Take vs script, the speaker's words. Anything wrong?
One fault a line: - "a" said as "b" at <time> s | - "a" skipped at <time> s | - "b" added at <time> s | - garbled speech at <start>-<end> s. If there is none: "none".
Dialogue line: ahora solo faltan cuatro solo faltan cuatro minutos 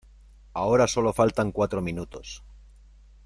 - "solo faltan cuatro" skipped at 1.8 s